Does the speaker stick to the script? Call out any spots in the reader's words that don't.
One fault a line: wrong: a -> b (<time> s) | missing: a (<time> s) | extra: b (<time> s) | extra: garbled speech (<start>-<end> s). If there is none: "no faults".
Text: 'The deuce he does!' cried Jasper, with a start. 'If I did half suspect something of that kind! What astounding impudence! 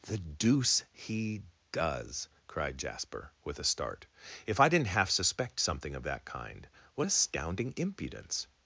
wrong: did -> didn't (4.7 s)